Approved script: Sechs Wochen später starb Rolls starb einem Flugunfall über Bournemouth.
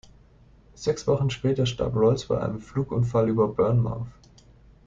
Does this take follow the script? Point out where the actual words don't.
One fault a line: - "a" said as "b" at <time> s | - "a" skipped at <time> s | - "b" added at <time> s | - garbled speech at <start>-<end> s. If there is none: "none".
- "starb" said as "bei" at 2.2 s